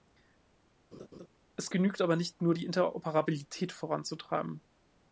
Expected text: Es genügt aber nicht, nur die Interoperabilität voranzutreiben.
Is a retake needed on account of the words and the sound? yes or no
yes